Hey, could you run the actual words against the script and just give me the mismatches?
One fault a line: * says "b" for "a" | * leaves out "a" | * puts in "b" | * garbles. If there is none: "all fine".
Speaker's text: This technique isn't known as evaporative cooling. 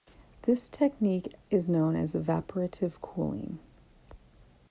* says "is" for "isn't"